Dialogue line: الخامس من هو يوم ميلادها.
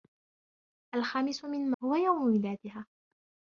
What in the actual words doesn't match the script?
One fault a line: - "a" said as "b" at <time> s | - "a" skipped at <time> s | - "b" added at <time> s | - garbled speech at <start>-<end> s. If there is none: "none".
none